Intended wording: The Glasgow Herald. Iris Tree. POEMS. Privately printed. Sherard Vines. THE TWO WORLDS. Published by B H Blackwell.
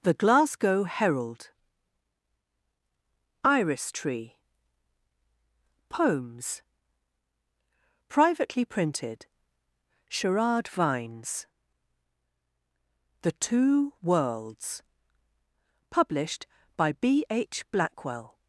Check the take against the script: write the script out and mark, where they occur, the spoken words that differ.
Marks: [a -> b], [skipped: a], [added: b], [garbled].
The Glasgow Herald. Iris Tree. POEMS. Privately printed. Sherard Vines. THE TWO WORLDS. Published by B H Blackwell.